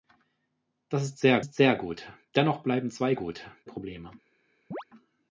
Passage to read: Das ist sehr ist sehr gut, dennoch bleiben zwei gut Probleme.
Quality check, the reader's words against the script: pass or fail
pass